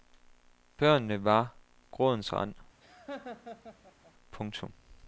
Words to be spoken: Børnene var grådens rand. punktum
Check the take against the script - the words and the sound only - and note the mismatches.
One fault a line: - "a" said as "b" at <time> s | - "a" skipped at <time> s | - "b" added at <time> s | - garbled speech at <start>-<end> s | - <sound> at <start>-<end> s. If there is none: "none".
- laugh at 2.8-4.1 s